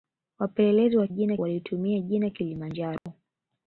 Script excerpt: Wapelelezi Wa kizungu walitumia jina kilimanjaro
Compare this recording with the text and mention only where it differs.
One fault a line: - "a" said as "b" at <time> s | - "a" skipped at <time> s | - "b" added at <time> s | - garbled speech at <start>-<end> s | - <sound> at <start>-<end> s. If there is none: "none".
- "kizungu" said as "jina" at 1.1 s
- dropout at 3.0-3.1 s